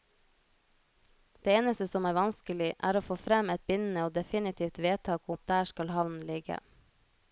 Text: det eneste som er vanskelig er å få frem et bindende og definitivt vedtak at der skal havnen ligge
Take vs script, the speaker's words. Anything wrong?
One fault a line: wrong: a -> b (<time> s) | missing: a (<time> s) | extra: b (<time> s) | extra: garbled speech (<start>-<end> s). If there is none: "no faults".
no faults